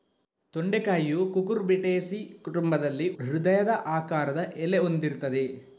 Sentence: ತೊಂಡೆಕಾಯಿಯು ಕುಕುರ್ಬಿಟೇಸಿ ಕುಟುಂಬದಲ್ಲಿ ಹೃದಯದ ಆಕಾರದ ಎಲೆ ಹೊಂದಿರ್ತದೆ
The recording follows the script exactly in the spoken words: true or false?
true